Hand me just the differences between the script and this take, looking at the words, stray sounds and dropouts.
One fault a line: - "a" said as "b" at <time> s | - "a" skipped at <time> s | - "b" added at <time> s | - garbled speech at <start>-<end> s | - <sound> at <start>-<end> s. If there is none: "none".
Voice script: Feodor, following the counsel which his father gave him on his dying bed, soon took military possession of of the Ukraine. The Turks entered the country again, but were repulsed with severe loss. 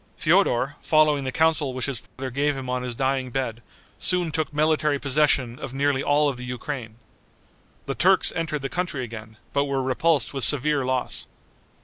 - dropout at 2.1-2.2 s
- "nearly all" added at 5.8 s